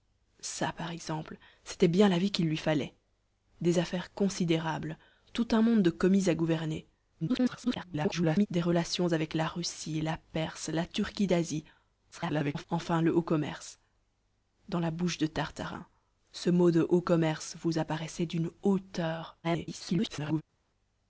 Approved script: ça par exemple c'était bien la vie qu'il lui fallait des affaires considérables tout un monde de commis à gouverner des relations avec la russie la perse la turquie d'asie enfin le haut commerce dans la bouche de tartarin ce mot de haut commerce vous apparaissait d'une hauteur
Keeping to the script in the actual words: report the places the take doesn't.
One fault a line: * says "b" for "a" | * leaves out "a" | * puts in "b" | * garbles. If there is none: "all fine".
* garbles
* garbles
* garbles